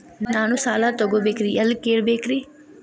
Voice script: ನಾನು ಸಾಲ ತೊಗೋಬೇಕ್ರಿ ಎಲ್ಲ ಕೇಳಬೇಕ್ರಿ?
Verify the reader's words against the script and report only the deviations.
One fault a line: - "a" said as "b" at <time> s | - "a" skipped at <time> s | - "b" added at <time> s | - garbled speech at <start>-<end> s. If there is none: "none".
none